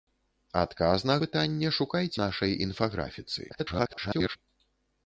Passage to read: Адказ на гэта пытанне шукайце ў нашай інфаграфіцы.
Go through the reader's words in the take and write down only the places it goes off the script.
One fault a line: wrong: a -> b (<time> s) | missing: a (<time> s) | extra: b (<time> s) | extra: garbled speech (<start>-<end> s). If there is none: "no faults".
missing: гэта (1.2 s)
missing: ў (2.1 s)
extra: garbled speech (3.5-4.4 s)